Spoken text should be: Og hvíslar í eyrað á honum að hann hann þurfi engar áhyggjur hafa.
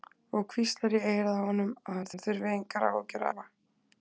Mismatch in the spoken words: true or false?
false